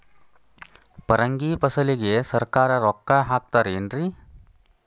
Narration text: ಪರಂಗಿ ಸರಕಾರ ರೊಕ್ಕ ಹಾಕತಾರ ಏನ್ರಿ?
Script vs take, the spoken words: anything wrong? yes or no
yes